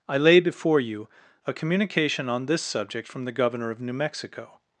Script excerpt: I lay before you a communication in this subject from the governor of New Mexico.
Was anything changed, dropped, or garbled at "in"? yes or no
yes